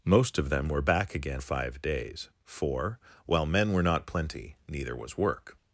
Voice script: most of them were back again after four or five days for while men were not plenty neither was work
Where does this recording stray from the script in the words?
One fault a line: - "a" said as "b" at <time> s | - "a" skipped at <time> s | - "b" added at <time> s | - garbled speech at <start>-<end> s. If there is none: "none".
- "after four" skipped at 1.4 s